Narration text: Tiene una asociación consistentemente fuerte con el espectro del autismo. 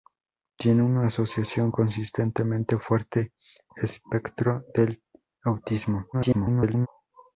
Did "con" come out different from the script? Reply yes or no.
yes